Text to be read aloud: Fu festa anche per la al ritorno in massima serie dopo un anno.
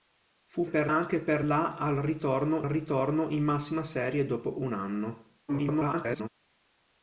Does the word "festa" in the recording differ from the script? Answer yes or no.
yes